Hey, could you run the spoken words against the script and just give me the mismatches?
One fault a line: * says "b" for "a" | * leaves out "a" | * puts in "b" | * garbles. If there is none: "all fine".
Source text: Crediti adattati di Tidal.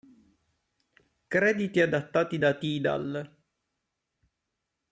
* says "da" for "di"